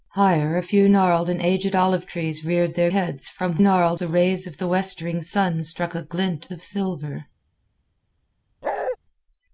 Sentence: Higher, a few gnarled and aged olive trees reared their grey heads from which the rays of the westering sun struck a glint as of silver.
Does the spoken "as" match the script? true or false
false